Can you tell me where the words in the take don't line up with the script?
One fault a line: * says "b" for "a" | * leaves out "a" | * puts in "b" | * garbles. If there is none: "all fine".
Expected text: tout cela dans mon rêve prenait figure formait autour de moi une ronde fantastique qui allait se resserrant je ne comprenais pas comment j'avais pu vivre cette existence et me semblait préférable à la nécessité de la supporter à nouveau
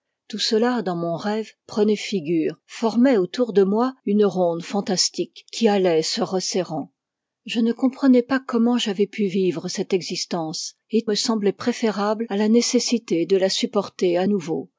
all fine